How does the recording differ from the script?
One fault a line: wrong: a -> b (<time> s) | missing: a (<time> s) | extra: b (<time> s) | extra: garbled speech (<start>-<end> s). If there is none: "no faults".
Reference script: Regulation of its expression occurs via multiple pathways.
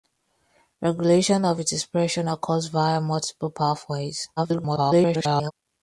extra: garbled speech (4.4-5.5 s)